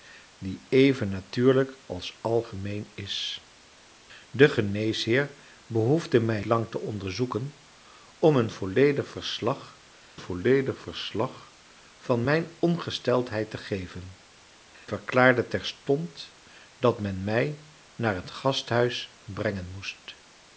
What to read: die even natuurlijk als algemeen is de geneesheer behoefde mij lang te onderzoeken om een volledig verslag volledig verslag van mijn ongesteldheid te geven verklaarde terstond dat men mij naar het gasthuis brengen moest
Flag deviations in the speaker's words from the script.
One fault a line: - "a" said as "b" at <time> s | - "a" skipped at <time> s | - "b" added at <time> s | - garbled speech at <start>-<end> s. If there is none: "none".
none